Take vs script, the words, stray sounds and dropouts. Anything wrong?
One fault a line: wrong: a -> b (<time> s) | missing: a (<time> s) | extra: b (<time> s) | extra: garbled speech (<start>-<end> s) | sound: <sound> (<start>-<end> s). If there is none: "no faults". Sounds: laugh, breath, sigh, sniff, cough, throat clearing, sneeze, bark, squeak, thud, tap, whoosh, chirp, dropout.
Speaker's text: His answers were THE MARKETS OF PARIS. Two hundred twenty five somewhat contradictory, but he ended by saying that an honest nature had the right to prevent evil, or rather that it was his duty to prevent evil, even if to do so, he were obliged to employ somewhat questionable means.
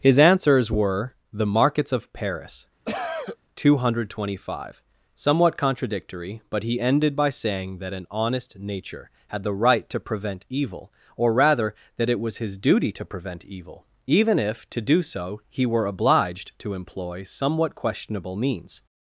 sound: cough (2.9-3.4 s)